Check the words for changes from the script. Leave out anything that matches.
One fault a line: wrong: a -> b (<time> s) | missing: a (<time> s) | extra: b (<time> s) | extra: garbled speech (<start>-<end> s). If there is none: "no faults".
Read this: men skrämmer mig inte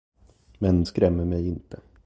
no faults